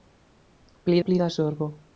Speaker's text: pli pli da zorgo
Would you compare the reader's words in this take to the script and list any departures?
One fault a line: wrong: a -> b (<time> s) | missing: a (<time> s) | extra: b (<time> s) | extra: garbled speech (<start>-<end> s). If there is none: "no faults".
no faults